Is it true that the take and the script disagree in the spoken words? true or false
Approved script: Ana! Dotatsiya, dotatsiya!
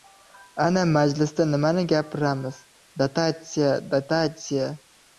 true